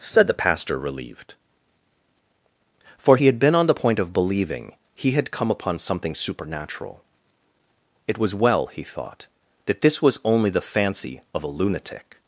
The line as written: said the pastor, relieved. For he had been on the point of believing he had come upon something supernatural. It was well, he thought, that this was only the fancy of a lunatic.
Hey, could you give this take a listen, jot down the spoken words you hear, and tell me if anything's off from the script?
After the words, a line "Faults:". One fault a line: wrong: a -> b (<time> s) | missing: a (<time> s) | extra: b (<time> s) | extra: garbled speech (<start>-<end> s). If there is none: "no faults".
said the pastor, relieved. For he had been on the point of believing he had come upon something supernatural. It was well, he thought, that this was only the fancy of a lunatic.
Faults:
no faults